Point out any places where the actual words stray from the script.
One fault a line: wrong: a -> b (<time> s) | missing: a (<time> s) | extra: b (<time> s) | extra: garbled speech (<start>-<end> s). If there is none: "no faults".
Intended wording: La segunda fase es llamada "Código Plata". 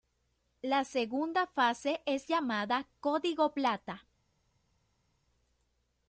no faults